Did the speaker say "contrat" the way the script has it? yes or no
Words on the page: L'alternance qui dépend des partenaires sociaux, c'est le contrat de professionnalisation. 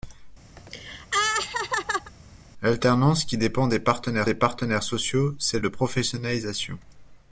no